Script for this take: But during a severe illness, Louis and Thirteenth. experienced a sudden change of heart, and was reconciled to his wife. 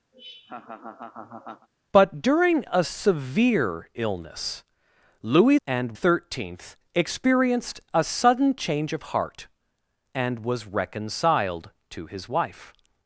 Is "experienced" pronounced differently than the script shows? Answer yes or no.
no